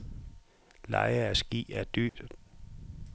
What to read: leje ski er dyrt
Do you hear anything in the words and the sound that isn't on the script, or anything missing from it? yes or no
yes